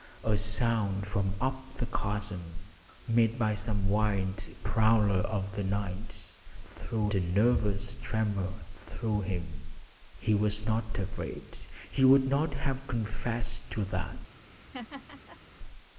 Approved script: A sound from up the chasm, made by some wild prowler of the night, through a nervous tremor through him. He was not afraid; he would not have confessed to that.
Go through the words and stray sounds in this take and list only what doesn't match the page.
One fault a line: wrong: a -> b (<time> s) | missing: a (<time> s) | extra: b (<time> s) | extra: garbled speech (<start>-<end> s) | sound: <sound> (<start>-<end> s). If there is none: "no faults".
sound: laugh (14.4-15.4 s)